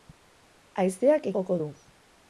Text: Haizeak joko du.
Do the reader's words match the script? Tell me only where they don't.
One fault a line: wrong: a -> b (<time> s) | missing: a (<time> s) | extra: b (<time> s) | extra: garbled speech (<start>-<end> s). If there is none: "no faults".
no faults